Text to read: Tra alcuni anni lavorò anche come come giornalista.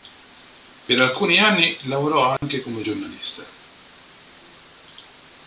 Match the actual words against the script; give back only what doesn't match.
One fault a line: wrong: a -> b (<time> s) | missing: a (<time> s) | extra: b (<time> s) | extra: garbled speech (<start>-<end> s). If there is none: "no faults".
wrong: Tra -> Per (0.9 s)
missing: come (2.9 s)